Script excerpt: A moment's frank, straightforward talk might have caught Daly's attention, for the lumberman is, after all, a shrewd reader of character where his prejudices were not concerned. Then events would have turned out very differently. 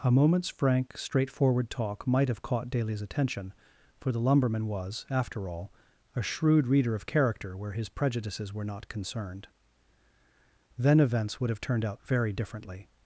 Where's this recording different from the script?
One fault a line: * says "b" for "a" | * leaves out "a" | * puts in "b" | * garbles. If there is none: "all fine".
* says "was" for "is"